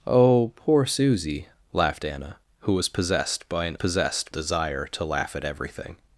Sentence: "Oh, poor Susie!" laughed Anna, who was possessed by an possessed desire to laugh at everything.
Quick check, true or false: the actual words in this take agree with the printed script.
true